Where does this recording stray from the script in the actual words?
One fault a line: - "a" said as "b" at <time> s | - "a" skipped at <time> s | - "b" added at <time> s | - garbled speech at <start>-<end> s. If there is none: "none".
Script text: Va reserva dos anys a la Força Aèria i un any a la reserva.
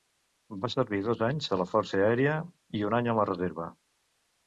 - "reserva" said as "servir" at 0.8 s